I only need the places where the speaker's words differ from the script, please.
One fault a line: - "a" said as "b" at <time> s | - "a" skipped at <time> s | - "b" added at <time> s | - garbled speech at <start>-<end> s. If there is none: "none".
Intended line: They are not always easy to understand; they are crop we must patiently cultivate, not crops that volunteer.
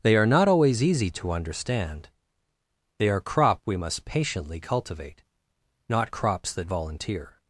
none